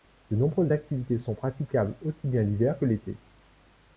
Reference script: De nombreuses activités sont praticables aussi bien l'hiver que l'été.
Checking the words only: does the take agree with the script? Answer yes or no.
yes